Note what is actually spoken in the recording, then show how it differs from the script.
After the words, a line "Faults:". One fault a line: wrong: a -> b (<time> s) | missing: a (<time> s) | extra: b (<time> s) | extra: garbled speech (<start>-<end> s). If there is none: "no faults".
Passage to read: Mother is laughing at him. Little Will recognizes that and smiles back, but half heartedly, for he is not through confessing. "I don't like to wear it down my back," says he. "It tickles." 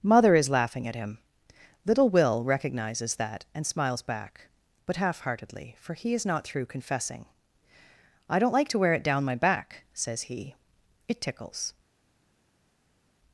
Mother is laughing at him. Little Will recognizes that and smiles back, but half heartedly, for he is not through confessing. "I don't like to wear it down my back," says he. "It tickles."
Faults:
no faults